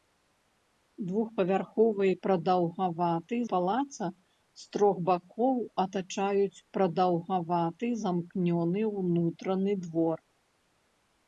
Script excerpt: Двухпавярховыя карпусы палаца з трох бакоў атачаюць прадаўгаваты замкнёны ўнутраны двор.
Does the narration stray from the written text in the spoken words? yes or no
yes